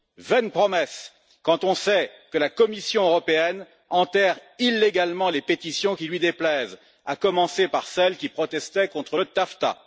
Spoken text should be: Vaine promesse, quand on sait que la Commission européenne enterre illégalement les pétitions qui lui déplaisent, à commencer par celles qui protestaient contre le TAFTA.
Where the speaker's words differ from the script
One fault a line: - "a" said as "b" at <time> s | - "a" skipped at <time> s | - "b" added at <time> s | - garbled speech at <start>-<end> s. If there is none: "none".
none